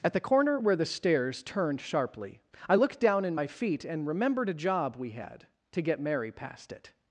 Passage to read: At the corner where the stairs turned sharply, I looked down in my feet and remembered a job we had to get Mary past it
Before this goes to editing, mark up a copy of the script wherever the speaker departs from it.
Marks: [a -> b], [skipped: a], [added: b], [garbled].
At the corner where the stairs turned sharply, I looked down in my feet and remembered a job we had to get Mary past it